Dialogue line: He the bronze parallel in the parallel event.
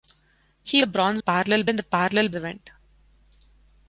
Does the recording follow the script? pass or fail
pass